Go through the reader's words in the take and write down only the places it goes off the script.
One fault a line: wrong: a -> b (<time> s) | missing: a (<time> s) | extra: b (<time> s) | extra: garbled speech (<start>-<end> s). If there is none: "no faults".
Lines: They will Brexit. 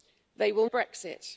no faults